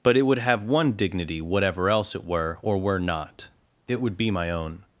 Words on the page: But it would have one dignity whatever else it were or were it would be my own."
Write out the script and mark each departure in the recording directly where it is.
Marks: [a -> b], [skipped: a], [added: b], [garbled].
But it would have one dignity whatever else it were or were [added: not] it would be my own."